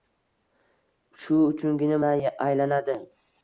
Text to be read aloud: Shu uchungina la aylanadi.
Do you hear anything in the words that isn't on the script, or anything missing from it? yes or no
no